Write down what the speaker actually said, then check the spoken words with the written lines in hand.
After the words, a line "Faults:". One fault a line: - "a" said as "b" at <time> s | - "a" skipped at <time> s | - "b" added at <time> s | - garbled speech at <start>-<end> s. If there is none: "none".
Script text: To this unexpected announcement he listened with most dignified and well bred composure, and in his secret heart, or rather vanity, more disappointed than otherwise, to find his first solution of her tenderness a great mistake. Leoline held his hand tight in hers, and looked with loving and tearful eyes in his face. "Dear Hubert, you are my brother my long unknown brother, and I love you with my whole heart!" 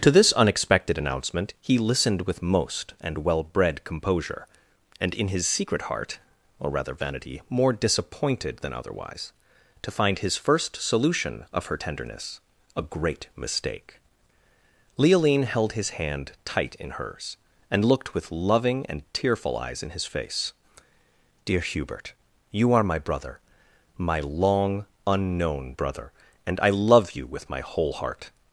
To this unexpected announcement he listened with most and well bred composure, and in his secret heart, or rather vanity, more disappointed than otherwise, to find his first solution of her tenderness a great mistake. Leoline held his hand tight in hers, and looked with loving and tearful eyes in his face. "Dear Hubert, you are my brother my long unknown brother, and I love you with my whole heart!"
Faults:
- "dignified" skipped at 3.0 s